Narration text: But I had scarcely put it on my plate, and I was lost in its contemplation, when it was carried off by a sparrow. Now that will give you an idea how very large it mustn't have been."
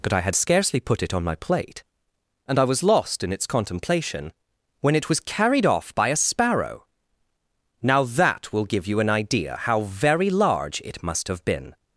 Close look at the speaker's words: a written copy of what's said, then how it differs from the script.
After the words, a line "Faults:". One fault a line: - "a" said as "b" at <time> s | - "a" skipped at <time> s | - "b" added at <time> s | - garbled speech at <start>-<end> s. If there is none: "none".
But I had scarcely put it on my plate, and I was lost in its contemplation, when it was carried off by a sparrow. Now that will give you an idea how very large it must have been."
Faults:
- "mustn't" said as "must" at 11.0 s